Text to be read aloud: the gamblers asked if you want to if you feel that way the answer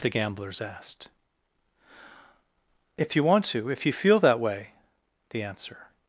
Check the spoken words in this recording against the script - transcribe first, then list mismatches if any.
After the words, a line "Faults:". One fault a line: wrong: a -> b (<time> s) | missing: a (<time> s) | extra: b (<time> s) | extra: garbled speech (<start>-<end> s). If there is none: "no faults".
the gamblers asked if you want to if you feel that way the answer
Faults:
no faults